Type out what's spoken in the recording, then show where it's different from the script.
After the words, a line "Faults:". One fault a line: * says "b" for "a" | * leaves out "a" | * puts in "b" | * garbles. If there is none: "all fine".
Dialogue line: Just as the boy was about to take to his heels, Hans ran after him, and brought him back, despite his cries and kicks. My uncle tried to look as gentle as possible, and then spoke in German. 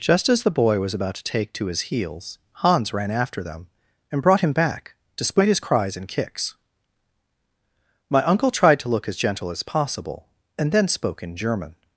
Just as the boy was about to take to his heels, Hans ran after them, and brought him back, despite his cries and kicks. My uncle tried to look as gentle as possible, and then spoke in German.
Faults:
* says "them" for "him"